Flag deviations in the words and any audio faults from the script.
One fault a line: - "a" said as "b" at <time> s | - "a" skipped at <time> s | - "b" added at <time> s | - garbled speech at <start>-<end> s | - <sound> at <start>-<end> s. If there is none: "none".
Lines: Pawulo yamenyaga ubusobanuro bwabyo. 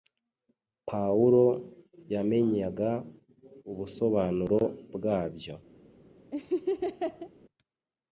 - laugh at 6.3-7.3 s